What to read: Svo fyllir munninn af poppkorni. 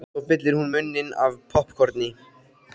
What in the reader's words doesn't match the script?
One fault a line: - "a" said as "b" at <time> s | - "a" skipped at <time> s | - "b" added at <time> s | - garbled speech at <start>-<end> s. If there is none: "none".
- "hún" added at 0.6 s